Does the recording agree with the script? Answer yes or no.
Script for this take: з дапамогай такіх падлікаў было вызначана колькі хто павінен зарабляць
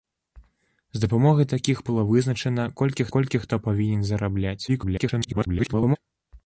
no